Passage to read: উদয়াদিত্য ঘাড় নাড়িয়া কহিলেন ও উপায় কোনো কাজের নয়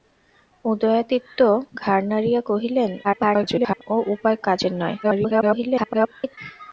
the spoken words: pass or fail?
fail